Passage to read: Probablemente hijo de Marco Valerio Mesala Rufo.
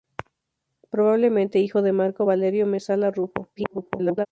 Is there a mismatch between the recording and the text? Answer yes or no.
yes